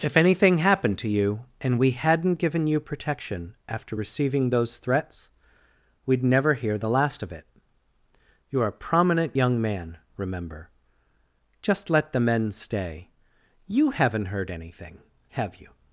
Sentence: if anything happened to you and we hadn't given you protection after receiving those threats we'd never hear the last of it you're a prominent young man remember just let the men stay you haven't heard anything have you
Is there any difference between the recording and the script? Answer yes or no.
no